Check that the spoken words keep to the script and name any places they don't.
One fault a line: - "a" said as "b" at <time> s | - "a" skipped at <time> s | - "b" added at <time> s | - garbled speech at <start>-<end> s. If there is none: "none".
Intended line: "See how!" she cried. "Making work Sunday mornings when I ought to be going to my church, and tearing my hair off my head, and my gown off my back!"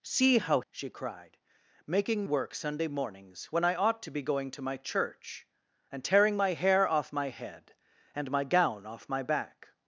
none